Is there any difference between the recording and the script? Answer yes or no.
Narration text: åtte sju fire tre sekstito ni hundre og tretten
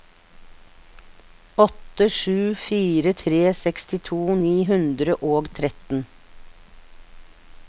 no